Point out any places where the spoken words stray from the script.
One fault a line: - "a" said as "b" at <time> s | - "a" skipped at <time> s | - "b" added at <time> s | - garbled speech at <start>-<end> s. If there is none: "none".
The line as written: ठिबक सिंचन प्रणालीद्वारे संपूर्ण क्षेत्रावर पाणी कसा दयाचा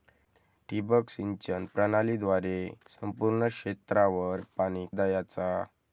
- "कसा" skipped at 4.9 s